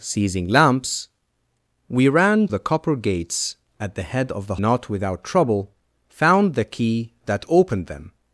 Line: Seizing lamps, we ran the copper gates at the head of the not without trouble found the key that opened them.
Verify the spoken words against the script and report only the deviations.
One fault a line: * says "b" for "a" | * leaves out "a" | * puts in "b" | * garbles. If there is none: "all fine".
all fine